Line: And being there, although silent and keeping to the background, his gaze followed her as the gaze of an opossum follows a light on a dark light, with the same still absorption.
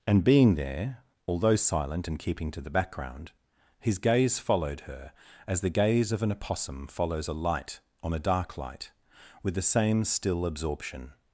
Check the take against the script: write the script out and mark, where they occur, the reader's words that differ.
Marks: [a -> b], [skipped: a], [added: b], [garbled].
And being there, although silent and keeping to the background, his gaze followed her as the gaze of an opossum follows a light on a dark light, with the same still absorption.